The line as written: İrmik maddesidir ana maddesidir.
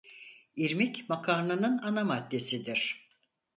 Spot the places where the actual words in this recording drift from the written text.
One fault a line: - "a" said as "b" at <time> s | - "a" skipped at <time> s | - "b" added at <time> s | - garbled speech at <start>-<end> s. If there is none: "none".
- "maddesidir" said as "makarnanın" at 1.1 s